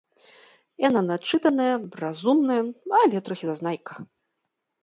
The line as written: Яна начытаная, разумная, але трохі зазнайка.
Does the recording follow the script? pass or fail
pass